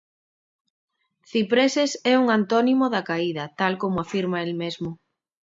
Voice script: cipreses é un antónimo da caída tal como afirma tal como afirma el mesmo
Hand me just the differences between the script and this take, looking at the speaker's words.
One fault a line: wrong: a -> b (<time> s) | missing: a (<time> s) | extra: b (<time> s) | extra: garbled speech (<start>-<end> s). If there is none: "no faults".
missing: tal como afirma (4.4 s)